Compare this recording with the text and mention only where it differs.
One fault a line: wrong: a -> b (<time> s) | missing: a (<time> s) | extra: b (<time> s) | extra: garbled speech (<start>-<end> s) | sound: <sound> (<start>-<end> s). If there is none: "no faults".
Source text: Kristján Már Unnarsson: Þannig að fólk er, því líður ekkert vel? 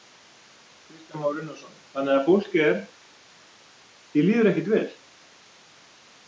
no faults